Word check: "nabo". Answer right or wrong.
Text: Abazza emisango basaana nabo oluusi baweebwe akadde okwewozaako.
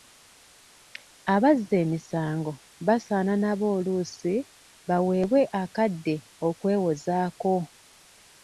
right